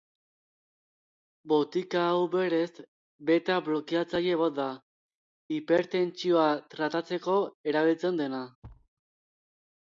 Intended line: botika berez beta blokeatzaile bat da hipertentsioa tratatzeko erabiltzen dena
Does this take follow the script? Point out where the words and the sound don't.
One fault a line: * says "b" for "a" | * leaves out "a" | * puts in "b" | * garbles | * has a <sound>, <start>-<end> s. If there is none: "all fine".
* puts in "hau"
* has a thud, 8.6-8.9 s